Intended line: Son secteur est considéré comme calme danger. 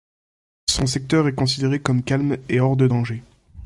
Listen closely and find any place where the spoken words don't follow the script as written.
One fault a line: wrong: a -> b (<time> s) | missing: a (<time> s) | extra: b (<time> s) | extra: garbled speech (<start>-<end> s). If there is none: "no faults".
extra: et hors de (2.5 s)